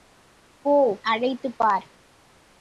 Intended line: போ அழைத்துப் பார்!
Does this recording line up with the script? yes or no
yes